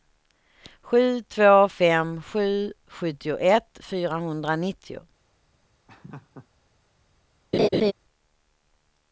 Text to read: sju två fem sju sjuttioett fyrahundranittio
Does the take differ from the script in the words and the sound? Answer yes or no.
yes